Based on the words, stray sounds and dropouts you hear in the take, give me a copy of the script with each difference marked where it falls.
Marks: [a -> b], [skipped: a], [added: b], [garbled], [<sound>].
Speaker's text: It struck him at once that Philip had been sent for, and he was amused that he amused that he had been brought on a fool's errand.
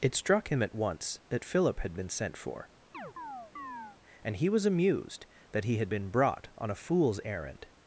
It struck him at once that Philip had been sent for, [chirp] and he was amused that he [skipped: amused that he] had been brought on a fool's errand.